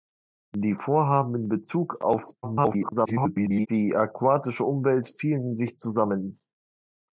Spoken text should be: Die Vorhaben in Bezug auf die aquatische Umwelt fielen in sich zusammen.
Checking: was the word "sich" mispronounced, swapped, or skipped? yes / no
no